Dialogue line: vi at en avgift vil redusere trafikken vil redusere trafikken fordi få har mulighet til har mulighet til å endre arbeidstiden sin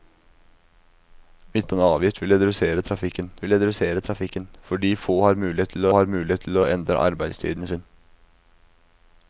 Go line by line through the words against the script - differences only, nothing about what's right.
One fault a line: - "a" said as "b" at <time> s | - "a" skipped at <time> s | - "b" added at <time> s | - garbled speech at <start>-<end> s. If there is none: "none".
none